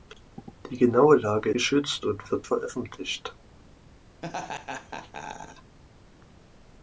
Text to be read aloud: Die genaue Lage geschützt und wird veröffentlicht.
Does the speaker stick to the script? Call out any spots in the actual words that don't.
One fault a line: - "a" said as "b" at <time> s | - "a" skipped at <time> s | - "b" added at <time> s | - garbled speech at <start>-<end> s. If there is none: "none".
none